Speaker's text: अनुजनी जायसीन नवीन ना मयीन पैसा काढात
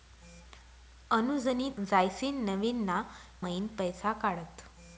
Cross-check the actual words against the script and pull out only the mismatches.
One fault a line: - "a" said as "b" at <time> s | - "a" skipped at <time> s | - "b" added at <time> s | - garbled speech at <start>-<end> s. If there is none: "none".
none